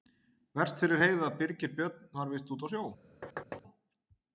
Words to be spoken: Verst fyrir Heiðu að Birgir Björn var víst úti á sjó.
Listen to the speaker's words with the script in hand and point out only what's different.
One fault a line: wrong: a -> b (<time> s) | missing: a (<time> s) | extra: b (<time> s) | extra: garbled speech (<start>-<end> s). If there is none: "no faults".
no faults